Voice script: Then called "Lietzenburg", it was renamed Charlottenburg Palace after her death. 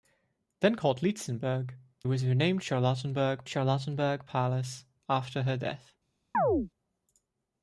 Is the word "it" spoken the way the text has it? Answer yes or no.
no